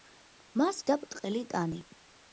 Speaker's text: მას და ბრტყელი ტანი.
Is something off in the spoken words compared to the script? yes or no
no